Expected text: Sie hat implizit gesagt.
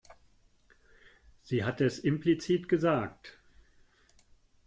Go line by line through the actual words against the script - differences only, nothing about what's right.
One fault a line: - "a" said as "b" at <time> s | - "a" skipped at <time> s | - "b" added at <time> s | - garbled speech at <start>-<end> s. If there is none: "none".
- "es" added at 1.8 s